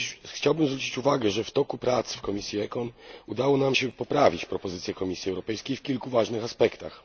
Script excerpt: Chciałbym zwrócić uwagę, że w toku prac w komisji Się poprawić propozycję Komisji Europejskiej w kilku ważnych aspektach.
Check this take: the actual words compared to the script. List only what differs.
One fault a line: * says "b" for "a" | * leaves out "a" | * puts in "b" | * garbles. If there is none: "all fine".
* puts in "ECON udało nam"